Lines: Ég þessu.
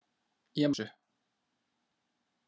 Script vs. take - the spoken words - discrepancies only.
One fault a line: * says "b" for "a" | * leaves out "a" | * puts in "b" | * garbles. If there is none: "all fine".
all fine